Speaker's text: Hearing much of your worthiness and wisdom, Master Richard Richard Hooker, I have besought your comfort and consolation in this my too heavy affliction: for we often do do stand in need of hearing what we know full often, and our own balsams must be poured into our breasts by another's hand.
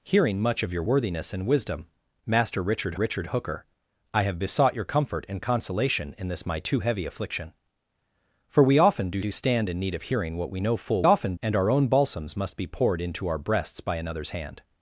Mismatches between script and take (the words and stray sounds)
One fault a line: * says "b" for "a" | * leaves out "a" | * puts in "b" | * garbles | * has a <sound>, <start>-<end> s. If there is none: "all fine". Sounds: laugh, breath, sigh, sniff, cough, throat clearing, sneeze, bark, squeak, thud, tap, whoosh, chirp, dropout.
all fine